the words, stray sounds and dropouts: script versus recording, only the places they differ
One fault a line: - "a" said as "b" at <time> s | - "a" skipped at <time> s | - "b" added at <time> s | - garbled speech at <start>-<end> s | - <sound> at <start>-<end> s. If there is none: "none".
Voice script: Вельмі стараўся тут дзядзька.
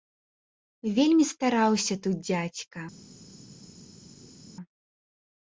none